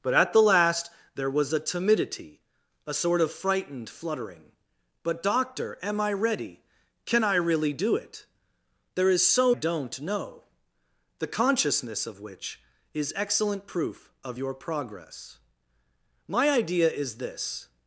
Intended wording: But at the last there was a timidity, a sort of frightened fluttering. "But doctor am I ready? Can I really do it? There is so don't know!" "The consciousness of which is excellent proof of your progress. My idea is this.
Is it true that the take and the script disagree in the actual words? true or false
false